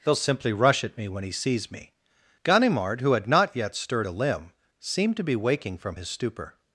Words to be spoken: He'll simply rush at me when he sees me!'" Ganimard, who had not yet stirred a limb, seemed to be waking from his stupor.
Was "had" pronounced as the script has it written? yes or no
yes